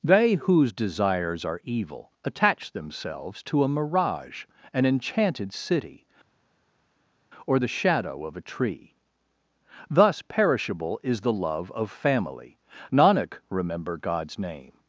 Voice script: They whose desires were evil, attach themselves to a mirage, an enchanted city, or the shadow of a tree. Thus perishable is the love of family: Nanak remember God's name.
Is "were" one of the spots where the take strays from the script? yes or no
yes